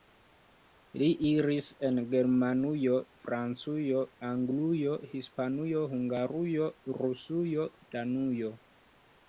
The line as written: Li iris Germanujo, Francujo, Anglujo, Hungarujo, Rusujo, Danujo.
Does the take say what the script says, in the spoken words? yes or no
no